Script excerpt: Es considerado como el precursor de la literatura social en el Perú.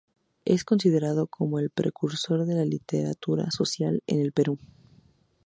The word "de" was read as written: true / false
true